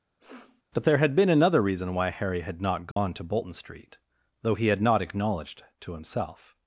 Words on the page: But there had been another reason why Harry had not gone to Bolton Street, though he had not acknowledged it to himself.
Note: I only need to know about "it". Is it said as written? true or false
false